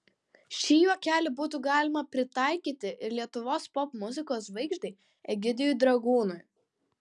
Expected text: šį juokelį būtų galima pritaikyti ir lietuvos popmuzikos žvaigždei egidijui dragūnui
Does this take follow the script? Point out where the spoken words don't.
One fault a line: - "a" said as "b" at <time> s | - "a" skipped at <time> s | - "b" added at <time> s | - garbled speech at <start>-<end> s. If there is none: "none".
none